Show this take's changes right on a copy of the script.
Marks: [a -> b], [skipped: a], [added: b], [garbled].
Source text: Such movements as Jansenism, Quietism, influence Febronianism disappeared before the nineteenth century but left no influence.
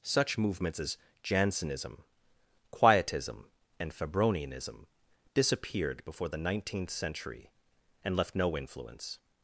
Such movements as Jansenism, Quietism, [influence -> and] Febronianism disappeared before the nineteenth century [but -> and] left no influence.